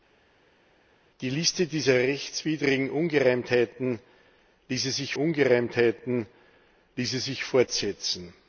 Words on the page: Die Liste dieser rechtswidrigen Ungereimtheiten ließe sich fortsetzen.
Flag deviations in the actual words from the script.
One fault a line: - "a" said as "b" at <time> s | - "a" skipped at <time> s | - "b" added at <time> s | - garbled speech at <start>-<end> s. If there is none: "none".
- "Ungereimtheiten ließe sich" added at 5.1 s